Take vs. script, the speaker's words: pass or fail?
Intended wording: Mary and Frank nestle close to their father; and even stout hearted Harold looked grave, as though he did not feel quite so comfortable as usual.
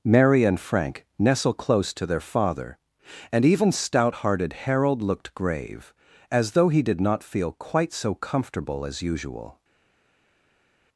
pass